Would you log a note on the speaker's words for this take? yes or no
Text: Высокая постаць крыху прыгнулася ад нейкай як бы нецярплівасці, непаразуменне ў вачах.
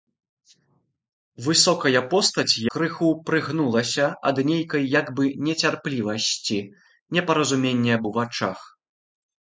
no